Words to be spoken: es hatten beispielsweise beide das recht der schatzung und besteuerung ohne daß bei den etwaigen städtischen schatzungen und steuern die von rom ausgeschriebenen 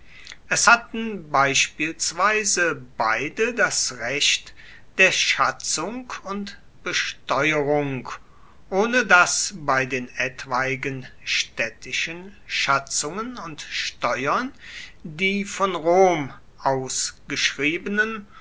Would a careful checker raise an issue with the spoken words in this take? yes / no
no